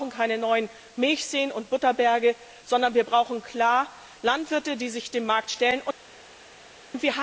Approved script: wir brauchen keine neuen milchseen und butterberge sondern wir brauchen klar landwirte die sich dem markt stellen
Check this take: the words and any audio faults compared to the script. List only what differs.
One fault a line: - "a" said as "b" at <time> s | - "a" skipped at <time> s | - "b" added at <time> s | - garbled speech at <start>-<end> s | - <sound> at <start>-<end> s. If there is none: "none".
none